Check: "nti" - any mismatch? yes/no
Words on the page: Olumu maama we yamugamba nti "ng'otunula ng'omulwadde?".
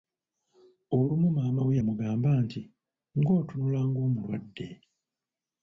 no